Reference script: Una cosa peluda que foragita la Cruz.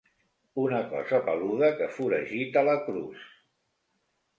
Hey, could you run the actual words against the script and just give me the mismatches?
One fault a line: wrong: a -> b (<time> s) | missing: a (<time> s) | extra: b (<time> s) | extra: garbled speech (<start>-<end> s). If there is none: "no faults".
no faults